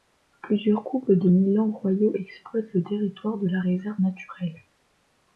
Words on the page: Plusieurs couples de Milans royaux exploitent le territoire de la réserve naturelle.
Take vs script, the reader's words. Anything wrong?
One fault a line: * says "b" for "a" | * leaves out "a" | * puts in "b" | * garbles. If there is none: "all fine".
all fine